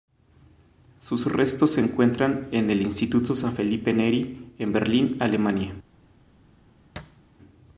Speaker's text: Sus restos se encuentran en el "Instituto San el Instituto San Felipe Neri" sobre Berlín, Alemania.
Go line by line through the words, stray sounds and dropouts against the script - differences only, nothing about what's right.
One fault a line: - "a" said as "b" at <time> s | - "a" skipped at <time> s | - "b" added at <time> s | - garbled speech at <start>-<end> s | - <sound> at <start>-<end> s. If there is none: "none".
- "el Instituto San" skipped at 3.5 s
- "sobre" said as "en" at 4.6 s
- thud at 7.0-7.2 s